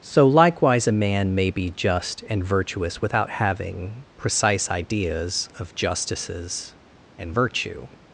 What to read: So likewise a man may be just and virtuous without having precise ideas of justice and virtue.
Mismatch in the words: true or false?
true